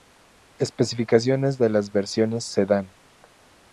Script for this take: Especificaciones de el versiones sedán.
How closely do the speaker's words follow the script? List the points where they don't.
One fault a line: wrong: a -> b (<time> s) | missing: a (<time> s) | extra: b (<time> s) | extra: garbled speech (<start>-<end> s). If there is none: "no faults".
wrong: el -> las (1.7 s)